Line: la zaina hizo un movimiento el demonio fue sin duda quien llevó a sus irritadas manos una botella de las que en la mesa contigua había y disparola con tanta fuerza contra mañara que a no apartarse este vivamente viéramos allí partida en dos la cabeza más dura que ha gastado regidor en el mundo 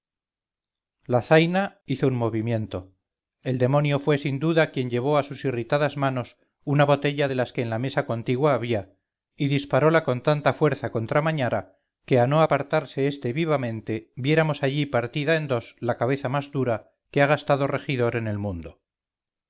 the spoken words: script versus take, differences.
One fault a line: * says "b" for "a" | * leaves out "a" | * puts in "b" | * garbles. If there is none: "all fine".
all fine